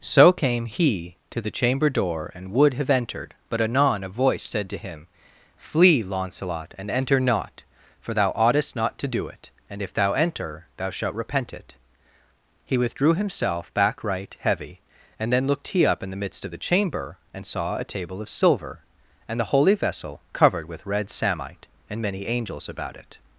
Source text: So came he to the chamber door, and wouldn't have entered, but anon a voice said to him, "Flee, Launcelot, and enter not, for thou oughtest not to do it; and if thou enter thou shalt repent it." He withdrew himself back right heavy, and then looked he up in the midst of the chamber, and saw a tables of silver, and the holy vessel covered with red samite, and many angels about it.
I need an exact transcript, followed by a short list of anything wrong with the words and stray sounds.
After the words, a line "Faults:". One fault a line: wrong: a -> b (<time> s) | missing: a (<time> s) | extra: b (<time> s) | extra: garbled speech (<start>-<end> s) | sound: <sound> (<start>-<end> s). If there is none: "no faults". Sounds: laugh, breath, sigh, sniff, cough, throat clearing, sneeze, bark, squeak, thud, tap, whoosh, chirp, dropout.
So came he to the chamber door, and would have entered, but anon a voice said to him, "Flee, Launcelot, and enter not, for thou oughtest not to do it; and if thou enter thou shalt repent it." He withdrew himself back right heavy, and then looked he up in the midst of the chamber, and saw a table of silver, and the holy vessel covered with red samite, and many angels about it.
Faults:
wrong: wouldn't -> would (2.5 s)
wrong: tables -> table (17.8 s)